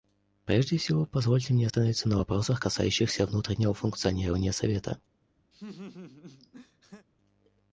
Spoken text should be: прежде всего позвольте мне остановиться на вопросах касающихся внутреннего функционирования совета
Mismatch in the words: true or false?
false